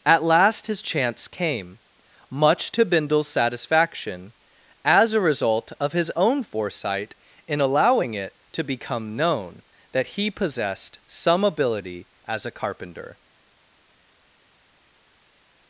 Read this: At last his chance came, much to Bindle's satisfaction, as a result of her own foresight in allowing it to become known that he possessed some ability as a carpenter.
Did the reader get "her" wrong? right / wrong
wrong